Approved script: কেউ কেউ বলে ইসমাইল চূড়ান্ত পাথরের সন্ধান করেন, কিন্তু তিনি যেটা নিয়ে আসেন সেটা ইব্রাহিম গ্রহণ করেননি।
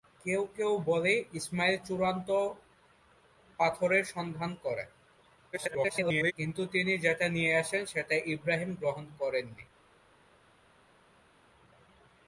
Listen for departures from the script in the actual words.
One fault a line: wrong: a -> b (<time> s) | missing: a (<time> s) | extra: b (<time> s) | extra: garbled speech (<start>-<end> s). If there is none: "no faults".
extra: garbled speech (5.5-6.3 s)